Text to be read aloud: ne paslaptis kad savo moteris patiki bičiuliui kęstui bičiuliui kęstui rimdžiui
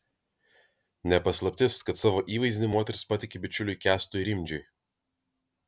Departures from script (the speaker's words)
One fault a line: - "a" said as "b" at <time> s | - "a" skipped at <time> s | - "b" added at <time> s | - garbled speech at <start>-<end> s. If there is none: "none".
- "įvaizdį" added at 2.4 s
- "bičiuliui kęstui" skipped at 4.3 s